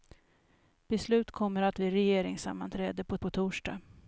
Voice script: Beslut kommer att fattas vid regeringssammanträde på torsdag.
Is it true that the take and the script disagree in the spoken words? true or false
true